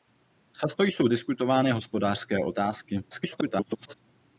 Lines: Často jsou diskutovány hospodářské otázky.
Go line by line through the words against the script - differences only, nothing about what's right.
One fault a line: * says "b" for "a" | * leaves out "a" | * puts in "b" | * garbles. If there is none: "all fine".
* garbles